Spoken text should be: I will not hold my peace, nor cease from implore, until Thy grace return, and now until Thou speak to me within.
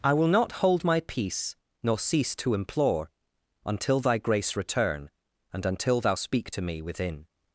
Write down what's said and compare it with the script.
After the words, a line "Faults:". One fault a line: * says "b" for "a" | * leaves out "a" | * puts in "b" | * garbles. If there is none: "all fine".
I will not hold my peace, nor cease to implore, until Thy grace return, and until Thou speak to me within.
Faults:
* says "to" for "from"
* leaves out "now"